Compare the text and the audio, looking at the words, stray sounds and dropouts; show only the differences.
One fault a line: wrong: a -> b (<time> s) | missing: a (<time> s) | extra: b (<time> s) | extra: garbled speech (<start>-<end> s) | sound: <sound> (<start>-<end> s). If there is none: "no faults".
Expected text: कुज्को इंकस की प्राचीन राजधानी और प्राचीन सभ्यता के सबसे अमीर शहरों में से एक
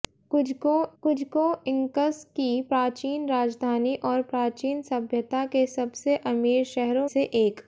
extra: कुज्को (1.0 s)
missing: में (7.1 s)